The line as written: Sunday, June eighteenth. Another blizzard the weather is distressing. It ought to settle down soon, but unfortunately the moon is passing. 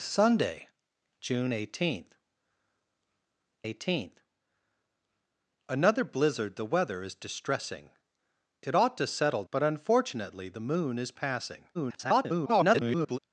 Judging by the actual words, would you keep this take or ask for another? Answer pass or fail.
fail